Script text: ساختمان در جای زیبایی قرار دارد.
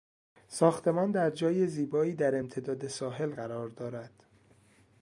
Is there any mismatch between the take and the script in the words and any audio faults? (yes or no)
yes